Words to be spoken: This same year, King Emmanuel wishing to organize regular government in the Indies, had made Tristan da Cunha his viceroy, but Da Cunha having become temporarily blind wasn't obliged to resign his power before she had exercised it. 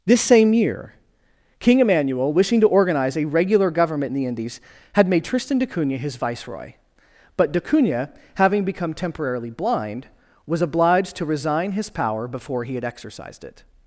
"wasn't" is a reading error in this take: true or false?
true